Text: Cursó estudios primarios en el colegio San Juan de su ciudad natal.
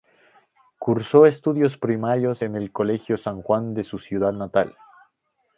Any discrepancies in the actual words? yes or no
no